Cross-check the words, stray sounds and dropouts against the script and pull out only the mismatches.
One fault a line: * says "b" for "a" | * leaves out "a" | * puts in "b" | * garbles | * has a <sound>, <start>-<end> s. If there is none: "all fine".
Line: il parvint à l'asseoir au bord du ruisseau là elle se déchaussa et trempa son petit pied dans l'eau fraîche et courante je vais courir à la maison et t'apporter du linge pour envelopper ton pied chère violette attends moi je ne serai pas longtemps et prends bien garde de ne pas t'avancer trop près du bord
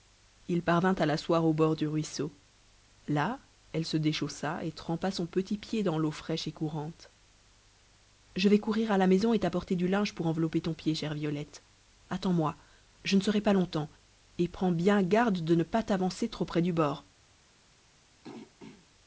* has a throat clearing, 18.2-18.9 s